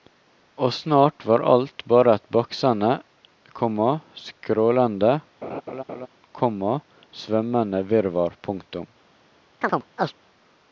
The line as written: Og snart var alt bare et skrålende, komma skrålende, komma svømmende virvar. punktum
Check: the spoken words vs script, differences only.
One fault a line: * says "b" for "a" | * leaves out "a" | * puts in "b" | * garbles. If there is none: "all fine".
* says "baksende" for "skrålende"